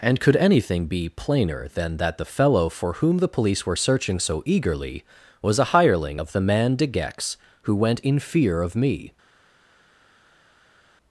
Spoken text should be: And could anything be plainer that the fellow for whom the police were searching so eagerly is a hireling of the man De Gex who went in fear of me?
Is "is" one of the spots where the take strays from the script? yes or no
yes